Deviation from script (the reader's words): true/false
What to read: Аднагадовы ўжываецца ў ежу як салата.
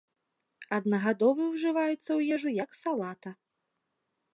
false